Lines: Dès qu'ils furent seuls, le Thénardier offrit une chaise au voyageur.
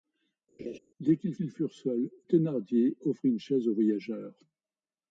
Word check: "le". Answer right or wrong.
wrong